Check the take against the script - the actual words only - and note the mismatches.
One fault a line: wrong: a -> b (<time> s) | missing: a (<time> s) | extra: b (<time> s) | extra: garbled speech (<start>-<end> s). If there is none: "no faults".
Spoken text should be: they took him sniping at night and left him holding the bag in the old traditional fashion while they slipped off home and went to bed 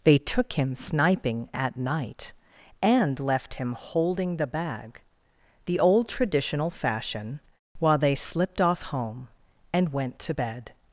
missing: in (5.0 s)